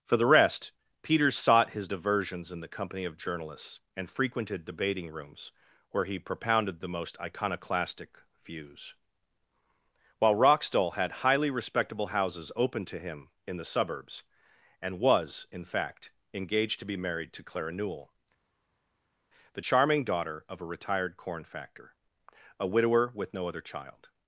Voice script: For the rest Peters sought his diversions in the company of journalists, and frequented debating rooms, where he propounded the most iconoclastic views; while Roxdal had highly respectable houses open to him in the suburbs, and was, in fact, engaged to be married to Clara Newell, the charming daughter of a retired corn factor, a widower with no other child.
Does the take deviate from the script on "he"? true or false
false